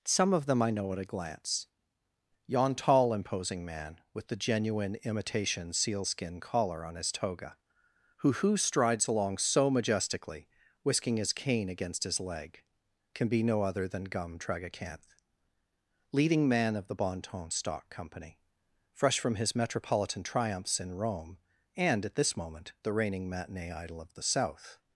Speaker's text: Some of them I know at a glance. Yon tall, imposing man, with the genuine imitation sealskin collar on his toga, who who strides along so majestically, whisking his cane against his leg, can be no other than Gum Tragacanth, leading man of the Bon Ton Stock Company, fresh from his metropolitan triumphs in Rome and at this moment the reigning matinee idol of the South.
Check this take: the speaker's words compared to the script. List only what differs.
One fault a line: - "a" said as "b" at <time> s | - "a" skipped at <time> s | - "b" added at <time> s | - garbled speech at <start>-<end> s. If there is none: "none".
none